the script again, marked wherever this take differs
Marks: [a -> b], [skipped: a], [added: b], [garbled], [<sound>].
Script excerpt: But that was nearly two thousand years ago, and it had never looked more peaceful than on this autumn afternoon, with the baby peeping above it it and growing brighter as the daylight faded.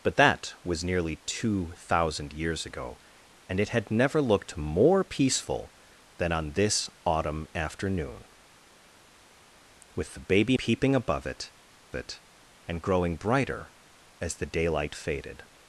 But that was nearly two thousand years ago, and it had never looked more peaceful than on this autumn afternoon, with the baby peeping above it it and growing brighter as the daylight faded.